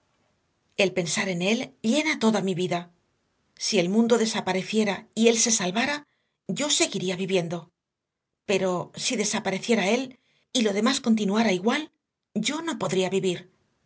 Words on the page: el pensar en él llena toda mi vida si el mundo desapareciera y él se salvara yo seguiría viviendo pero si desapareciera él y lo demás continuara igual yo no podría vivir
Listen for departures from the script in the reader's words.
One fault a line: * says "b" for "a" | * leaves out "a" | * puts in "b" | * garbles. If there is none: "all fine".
all fine